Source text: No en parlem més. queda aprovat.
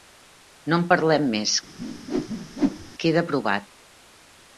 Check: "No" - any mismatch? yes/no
no